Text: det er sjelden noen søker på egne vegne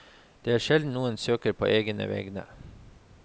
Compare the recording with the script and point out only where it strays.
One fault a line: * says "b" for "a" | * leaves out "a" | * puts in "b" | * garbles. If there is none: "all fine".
all fine